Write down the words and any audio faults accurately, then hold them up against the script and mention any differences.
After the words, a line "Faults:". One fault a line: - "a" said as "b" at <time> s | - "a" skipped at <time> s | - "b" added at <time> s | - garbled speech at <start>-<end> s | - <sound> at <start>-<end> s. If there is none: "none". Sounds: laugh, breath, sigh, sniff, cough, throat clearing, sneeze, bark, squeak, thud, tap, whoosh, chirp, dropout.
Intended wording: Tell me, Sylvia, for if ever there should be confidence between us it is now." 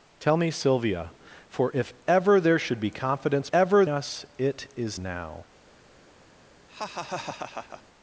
Tell me, Sylvia, for if ever there should be confidence ever us it is now."
Faults:
- "between" said as "ever" at 3.5 s
- laugh at 6.7-7.8 s